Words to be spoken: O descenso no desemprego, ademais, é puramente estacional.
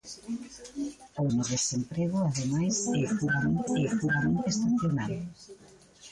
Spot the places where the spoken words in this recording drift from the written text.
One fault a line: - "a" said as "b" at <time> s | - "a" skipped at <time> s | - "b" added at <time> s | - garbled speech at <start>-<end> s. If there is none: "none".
- "descenso" skipped at 1.3 s
- "é puramente" added at 3.7 s